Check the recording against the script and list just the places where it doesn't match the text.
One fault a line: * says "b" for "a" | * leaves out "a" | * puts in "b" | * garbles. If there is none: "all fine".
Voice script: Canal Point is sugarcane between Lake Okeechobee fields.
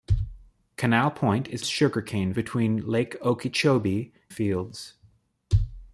all fine